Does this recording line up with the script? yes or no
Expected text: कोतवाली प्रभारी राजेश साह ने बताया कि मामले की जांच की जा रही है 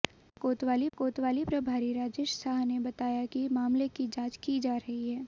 no